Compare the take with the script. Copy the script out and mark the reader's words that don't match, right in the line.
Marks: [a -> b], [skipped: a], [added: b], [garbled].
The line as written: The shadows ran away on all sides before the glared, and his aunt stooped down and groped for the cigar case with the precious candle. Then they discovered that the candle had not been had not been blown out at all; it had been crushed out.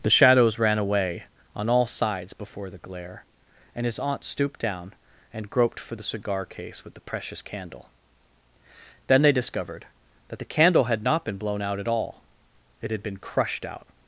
The shadows ran away on all sides before the [glared, -> glare] and his aunt stooped down and groped for the cigar case with the precious candle. Then they discovered that the candle had not been [skipped: had not been] blown out at all; it had been crushed out.